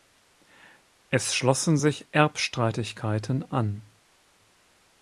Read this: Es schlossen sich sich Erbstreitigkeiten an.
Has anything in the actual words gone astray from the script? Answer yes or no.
yes